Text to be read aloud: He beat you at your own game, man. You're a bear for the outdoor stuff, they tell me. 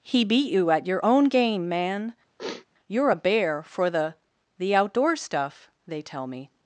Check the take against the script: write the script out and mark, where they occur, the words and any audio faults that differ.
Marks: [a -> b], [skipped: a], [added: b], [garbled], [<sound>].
He beat you at your own game, man. [sniff] You're a bear for the [added: the] outdoor stuff, they tell me.